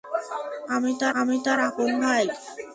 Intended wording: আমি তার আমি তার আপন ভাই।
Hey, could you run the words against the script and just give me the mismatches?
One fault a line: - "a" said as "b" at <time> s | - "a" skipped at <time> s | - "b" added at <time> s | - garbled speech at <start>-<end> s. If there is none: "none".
none